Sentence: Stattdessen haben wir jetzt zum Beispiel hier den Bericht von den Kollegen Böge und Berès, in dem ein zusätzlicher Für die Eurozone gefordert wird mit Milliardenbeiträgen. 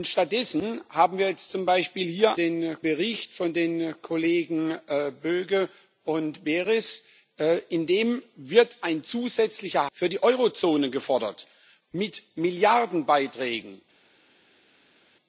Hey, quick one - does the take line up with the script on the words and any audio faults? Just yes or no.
yes